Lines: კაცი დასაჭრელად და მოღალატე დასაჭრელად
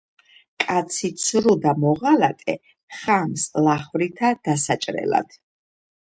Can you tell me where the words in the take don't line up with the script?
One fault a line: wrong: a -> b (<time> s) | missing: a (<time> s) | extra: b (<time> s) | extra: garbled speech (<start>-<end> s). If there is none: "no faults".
wrong: დასაჭრელად -> ცრუ (1.2 s)
extra: ხამს ლახვრითა (3.0 s)